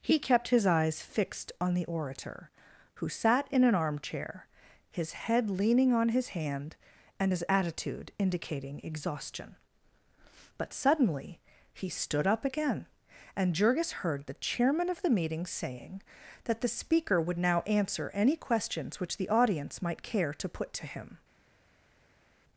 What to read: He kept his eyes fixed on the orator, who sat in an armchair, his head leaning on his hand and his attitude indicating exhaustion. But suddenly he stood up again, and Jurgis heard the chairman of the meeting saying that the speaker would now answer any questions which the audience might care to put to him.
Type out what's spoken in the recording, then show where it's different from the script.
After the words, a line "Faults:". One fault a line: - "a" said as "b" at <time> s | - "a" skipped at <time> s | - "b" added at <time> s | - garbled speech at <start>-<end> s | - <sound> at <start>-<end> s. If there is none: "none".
He kept his eyes fixed on the orator, who sat in an armchair, his head leaning on his hand and his attitude indicating exhaustion. But suddenly he stood up again, and Jurgis heard the chairman of the meeting saying that the speaker would now answer any questions which the audience might care to put to him.
Faults:
none